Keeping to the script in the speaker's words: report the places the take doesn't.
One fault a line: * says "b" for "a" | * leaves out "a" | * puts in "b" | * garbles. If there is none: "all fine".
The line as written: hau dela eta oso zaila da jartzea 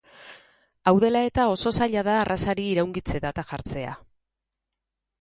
* puts in "arrazari iraungitze data"